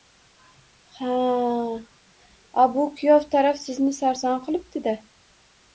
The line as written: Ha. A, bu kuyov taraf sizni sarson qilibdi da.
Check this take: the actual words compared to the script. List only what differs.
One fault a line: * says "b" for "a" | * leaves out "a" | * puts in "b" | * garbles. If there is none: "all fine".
all fine